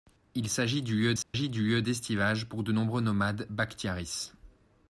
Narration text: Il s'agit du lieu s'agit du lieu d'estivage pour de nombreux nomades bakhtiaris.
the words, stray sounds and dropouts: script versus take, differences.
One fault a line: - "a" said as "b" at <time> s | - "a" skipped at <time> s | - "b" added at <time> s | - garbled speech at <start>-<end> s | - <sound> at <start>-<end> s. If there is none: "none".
- dropout at 1.2-1.3 s